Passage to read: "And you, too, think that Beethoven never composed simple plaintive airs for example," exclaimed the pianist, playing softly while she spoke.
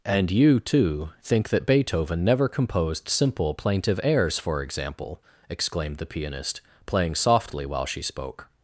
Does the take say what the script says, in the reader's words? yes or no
yes